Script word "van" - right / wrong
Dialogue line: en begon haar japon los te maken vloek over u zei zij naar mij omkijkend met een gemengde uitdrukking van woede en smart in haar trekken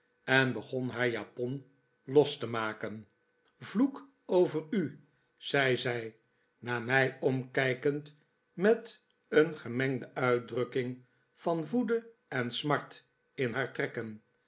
right